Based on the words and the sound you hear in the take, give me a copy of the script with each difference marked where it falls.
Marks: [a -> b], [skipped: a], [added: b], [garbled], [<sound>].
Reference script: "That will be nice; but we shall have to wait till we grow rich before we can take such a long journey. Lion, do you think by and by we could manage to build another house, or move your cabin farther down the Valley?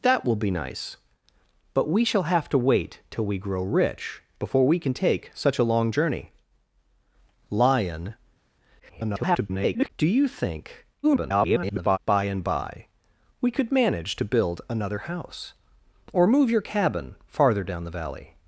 "That will be nice; but we shall have to wait till we grow rich before we can take such a long journey. Lion, [garbled] do you think [garbled] by and by we could manage to build another house, or move your cabin farther down the Valley?